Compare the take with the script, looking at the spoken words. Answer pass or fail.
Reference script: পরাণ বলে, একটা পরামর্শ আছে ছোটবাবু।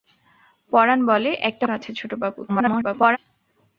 fail